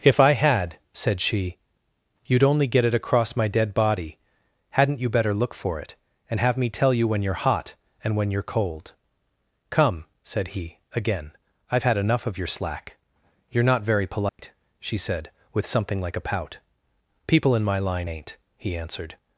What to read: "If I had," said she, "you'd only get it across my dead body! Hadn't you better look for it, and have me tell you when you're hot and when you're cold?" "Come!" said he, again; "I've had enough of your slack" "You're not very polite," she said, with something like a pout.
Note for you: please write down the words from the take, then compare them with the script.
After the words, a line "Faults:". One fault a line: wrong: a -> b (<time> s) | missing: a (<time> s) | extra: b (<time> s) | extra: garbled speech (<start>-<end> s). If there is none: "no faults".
"If I had," said she, "you'd only get it across my dead body! Hadn't you better look for it, and have me tell you when you're hot and when you're cold?" "Come!" said he, again; "I've had enough of your slack" "You're not very polite," she said, with something like a pout. "People in my line ain't," he answered
Faults:
extra: People in my line ain't he answered (17.3 s)